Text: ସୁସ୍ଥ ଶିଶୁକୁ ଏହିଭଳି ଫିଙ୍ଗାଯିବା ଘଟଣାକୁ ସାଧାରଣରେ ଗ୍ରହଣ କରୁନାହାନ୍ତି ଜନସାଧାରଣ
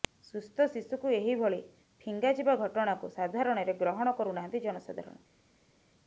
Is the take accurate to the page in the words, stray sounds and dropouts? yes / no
yes